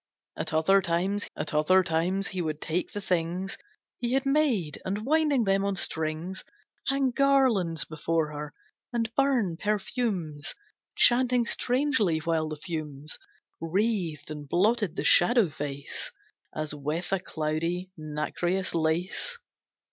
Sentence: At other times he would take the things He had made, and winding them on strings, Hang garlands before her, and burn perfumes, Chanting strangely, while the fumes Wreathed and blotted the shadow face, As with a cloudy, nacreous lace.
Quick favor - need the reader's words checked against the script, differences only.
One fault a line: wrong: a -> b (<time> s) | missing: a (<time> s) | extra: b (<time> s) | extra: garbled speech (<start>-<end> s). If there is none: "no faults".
extra: at other times (1.3 s)